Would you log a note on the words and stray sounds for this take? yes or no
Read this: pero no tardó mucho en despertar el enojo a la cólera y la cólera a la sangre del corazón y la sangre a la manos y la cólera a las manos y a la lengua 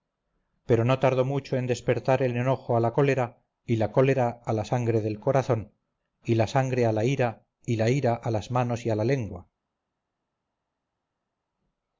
yes